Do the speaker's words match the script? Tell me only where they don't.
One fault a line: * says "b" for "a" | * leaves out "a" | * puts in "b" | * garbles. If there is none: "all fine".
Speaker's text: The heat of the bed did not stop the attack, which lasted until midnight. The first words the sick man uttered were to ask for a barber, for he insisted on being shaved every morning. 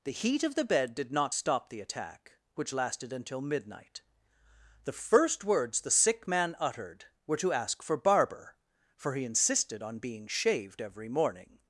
* leaves out "a"